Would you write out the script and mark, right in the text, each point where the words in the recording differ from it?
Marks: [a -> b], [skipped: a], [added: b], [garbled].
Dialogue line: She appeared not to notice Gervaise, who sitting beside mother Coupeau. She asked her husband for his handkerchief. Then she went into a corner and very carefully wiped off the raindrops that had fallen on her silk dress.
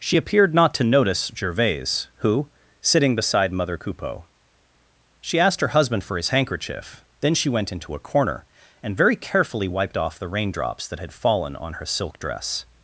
She appeared not to notice Gervaise, who sitting beside mother Coupeau. She asked her husband for his handkerchief. Then she went into a corner and very carefully wiped off the raindrops that had fallen on her silk dress.